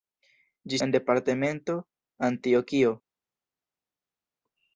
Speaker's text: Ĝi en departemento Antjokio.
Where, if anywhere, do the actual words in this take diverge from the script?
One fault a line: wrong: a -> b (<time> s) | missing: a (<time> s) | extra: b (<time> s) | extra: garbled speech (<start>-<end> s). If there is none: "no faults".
no faults